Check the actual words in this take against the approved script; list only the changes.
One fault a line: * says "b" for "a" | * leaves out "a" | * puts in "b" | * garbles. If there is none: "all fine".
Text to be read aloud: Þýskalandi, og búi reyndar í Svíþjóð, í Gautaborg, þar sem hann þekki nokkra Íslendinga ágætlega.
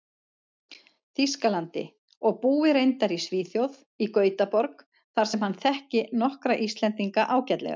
all fine